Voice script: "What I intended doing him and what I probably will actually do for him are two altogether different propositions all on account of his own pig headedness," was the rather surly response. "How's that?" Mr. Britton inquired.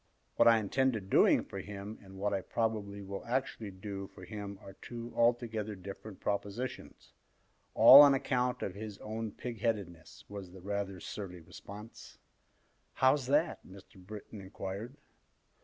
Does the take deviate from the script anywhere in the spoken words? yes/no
yes